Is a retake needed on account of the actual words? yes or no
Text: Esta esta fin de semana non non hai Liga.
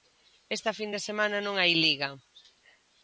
yes